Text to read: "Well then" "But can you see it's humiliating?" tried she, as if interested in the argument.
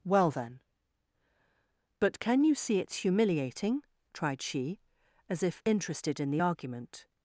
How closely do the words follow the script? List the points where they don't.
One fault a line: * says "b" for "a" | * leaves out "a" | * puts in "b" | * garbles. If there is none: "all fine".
all fine